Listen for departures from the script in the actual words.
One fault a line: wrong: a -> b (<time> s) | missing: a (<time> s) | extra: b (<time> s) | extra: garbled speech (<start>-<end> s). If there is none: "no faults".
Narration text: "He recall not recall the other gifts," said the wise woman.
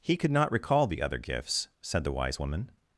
wrong: recall -> could (0.2 s)